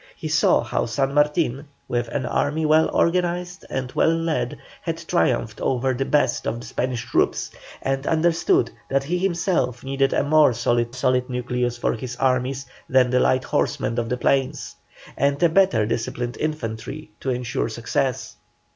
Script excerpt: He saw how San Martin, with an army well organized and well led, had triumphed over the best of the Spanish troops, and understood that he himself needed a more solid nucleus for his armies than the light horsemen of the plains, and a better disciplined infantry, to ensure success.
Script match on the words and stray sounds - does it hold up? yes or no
no